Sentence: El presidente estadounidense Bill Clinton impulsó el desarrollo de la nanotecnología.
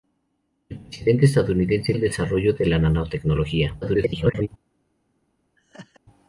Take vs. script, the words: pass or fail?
fail